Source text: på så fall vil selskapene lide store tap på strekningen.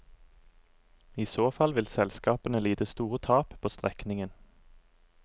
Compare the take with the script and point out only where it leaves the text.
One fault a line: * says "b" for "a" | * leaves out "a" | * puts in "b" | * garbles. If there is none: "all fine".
* says "I" for "på"